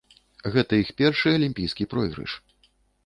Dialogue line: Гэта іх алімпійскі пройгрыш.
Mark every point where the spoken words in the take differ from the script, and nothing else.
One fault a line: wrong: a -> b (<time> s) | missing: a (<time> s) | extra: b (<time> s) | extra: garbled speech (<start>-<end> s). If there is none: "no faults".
extra: першы (1.0 s)